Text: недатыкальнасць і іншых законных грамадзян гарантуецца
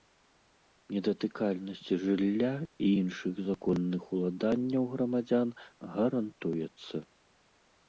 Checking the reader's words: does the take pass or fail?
fail